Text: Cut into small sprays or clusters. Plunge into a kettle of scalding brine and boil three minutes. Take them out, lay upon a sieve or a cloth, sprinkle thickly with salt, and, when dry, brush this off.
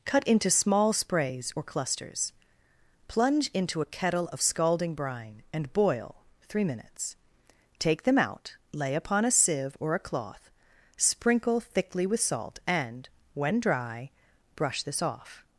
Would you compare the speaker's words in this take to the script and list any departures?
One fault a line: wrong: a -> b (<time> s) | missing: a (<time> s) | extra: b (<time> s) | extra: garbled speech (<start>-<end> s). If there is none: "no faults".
no faults